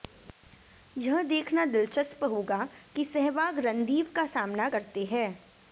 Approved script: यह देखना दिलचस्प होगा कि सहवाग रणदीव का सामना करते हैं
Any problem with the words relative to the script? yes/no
no